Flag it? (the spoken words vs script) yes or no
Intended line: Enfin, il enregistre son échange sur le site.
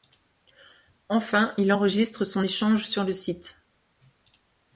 no